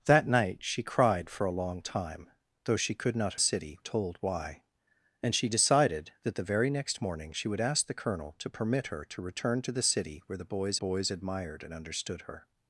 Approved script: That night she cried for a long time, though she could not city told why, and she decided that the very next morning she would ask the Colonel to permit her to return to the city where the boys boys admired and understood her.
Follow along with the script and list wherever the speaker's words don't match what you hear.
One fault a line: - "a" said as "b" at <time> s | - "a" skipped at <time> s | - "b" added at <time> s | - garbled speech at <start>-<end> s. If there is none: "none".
none